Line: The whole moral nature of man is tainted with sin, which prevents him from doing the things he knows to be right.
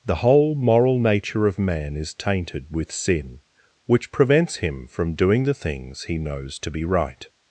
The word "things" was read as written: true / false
true